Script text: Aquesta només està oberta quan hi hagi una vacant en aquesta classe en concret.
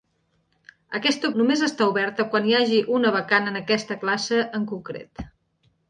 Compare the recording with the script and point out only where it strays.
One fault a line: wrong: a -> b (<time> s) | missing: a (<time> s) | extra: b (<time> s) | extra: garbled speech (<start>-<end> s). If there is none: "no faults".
no faults